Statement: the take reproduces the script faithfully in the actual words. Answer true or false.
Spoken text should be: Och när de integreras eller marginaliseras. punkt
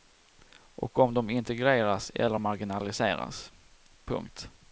false